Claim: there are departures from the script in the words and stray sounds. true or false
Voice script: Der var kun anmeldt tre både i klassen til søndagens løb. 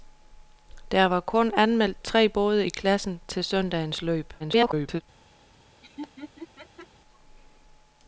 true